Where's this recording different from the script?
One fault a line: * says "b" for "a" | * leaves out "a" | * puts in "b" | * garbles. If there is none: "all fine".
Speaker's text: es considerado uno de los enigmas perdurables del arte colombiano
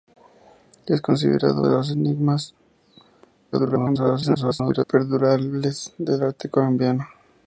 * leaves out "uno"
* garbles